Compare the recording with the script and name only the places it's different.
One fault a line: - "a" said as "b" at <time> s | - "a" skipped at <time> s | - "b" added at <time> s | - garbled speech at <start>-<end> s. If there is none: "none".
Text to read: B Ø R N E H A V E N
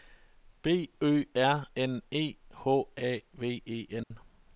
none